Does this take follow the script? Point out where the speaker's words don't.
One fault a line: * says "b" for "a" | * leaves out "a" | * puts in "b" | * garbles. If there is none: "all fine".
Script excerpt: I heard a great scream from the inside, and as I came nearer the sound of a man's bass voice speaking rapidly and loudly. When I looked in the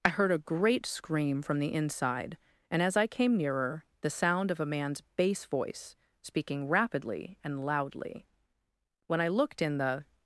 all fine